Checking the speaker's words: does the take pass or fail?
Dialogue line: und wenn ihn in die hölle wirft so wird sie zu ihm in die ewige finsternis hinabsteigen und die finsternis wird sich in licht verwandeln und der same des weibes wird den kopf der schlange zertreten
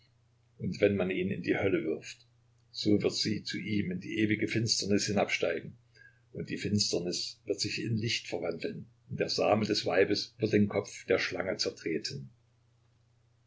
fail